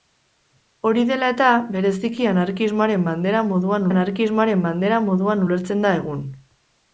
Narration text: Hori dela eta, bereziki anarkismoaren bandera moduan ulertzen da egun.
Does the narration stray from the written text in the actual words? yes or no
yes